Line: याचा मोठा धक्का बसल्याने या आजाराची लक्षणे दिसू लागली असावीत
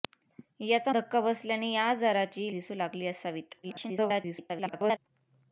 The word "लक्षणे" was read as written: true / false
false